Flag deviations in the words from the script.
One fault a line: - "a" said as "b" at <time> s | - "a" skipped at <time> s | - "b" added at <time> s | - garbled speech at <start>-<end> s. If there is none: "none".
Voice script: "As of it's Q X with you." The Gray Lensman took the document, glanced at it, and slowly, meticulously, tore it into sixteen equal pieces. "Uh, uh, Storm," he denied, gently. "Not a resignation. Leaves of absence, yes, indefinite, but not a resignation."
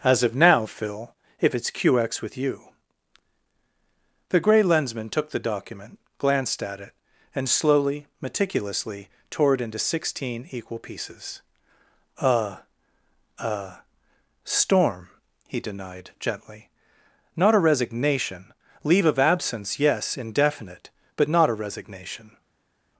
- "now Phil if" added at 0.3 s
- "Leaves" said as "Leave" at 18.8 s